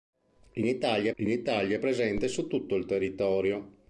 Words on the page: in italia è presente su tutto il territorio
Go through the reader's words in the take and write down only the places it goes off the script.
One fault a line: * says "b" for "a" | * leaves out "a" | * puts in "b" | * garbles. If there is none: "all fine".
* puts in "in italia"